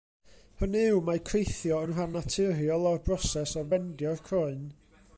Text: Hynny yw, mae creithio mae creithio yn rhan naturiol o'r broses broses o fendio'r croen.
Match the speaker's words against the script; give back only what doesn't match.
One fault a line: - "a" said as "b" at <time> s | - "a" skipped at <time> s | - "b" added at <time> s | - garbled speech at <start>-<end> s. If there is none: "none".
- "mae creithio" skipped at 1.8 s
- "broses" skipped at 3.6 s